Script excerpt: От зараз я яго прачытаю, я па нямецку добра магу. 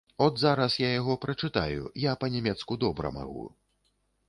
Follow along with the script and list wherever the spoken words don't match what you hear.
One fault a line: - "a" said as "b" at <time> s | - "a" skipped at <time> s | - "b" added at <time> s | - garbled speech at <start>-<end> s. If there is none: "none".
none